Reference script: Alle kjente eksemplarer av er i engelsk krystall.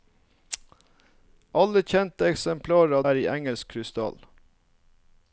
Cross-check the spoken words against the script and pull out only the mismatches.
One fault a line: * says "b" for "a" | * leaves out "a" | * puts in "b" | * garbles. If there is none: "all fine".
all fine